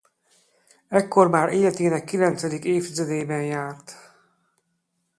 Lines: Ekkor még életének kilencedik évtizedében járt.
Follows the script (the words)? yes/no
no